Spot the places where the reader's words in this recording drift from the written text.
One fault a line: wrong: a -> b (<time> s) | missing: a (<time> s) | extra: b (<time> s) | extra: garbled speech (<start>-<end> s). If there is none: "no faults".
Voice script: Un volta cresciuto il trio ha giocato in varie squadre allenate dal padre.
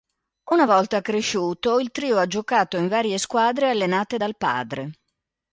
wrong: Un -> Una (0.5 s)